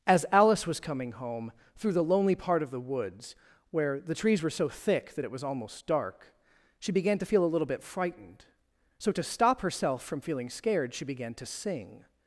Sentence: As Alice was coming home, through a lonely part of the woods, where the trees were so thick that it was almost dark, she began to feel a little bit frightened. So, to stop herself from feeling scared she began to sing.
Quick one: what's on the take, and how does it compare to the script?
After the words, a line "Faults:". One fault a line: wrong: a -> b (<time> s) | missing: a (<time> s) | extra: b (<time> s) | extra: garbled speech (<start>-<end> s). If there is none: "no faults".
As Alice was coming home, through the lonely part of the woods, where the trees were so thick that it was almost dark, she began to feel a little bit frightened. So, to stop herself from feeling scared she began to sing.
Faults:
wrong: a -> the (1.9 s)